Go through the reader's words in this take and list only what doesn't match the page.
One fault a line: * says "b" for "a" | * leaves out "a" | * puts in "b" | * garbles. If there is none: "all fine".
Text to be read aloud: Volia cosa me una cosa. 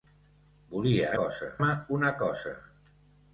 all fine